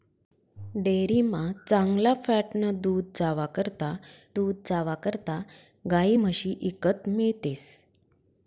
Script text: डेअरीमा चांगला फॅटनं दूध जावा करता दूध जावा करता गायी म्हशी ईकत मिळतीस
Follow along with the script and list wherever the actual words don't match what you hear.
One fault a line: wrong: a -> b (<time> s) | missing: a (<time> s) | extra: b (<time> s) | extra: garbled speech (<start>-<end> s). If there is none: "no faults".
no faults